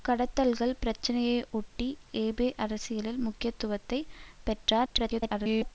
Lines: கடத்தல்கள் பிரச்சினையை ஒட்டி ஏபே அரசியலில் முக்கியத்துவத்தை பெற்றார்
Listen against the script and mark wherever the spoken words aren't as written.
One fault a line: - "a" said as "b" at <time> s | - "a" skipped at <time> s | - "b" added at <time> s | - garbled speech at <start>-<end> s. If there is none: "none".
- garbled speech at 4.8-5.7 s